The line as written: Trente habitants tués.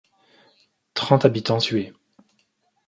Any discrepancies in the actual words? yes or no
no